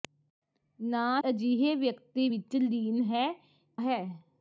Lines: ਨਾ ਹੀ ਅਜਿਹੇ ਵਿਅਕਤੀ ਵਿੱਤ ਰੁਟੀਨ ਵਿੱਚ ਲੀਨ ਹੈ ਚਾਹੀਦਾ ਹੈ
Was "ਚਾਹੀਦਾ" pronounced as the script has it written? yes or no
no